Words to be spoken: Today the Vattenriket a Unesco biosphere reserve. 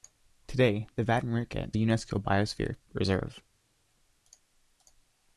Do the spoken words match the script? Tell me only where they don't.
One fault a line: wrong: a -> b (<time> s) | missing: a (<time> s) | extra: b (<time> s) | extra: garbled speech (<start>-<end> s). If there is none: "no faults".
no faults